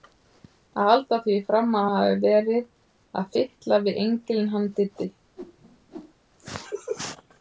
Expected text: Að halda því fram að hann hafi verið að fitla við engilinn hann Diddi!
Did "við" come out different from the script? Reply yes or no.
no